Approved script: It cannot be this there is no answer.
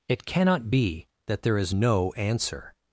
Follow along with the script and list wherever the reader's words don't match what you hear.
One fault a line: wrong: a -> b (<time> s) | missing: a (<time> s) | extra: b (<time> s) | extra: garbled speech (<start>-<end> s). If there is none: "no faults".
wrong: this -> that (1.3 s)